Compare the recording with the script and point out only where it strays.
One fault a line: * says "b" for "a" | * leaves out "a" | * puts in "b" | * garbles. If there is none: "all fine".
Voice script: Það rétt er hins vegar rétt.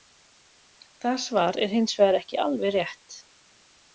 * says "svar" for "rétt"
* puts in "ekki alveg"